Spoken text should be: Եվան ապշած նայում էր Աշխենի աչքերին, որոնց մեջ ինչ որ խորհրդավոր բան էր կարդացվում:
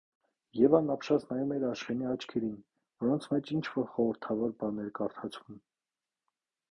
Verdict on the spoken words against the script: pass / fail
pass